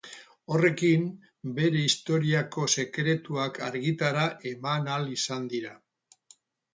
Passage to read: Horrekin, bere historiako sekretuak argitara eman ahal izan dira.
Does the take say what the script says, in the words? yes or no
yes